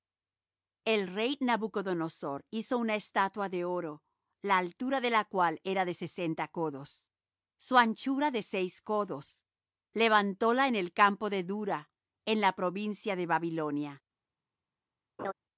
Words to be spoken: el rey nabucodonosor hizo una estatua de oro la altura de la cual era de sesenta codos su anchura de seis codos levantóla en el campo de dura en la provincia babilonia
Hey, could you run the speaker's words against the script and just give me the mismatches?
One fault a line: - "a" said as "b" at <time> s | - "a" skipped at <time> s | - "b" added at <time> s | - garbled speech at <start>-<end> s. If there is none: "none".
- "de" added at 13.2 s